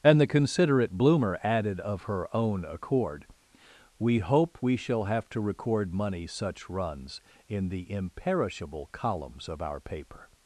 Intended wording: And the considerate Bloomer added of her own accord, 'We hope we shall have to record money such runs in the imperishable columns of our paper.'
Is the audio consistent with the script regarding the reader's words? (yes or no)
yes